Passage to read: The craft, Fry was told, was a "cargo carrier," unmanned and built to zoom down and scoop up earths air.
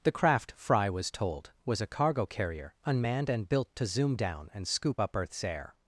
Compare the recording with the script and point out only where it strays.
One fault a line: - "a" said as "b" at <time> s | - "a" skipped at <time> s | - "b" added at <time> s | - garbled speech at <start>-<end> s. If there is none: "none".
none